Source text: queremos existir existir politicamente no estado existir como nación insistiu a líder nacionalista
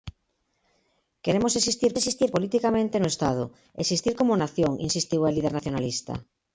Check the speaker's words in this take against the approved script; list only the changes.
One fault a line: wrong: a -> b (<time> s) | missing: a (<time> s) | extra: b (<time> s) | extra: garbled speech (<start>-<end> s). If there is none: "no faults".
no faults